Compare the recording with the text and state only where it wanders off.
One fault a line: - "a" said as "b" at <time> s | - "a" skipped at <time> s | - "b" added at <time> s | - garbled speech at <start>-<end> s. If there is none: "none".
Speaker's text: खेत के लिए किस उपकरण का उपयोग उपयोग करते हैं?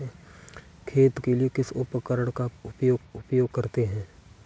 none